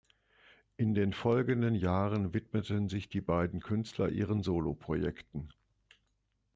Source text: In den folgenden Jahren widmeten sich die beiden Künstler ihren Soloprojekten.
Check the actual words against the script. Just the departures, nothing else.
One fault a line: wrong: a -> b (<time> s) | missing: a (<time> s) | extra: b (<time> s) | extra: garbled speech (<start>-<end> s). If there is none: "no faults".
no faults